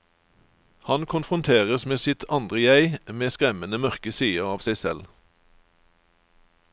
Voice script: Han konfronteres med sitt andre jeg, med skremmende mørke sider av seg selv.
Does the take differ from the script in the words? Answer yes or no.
no